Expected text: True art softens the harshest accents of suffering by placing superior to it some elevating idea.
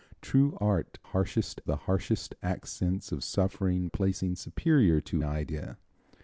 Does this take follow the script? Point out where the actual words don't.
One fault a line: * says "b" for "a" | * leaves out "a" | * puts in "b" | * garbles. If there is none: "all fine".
* says "harshest" for "softens"
* leaves out "by"
* leaves out "it some elevating"